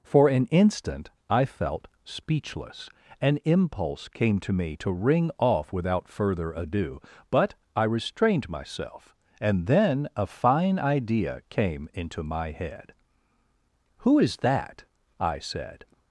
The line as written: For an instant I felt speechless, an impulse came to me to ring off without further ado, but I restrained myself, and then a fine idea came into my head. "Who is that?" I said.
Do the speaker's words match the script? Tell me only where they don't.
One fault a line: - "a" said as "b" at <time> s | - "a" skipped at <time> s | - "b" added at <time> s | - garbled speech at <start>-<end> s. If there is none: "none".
none